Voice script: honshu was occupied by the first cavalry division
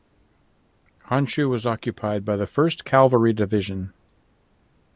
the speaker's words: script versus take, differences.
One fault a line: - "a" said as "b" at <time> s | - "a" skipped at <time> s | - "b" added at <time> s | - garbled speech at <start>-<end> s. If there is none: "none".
none